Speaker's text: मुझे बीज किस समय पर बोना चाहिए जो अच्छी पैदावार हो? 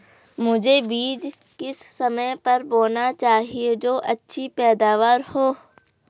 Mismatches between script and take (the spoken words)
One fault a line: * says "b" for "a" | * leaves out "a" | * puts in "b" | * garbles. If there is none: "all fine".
all fine